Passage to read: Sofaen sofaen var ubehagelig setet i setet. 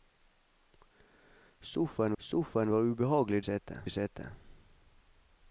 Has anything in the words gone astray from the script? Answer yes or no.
no